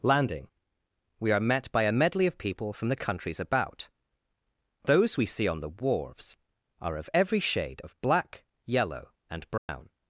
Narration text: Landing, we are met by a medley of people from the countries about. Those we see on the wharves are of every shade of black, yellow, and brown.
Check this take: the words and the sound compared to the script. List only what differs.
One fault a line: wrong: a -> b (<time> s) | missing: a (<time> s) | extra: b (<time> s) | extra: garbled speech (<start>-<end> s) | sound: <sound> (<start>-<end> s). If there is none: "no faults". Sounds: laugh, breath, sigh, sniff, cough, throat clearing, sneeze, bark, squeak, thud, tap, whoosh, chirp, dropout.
sound: dropout (9.6-9.7 s)